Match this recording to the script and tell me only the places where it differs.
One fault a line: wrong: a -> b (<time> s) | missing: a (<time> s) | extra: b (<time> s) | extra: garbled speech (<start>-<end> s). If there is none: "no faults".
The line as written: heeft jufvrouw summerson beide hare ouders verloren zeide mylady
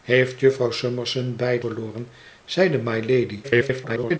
missing: hare ouders (1.6 s)
extra: garbled speech (3.4-4.2 s)